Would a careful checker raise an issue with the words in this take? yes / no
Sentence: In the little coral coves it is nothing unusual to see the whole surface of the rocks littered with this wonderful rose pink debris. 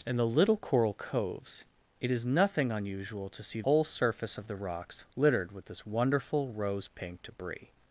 yes